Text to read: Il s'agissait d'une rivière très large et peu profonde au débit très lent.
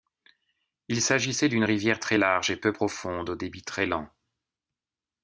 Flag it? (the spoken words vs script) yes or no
no